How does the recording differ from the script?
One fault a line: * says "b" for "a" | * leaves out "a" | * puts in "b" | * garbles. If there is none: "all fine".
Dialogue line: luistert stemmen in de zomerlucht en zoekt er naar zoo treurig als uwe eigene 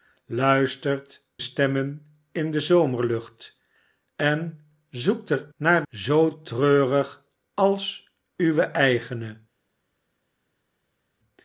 all fine